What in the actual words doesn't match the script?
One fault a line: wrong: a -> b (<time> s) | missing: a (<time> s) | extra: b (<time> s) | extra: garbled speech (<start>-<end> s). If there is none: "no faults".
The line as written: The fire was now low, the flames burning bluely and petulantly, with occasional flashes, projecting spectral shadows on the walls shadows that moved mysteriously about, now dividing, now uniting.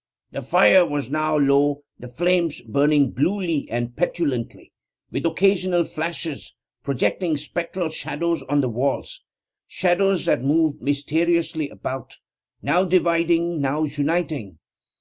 no faults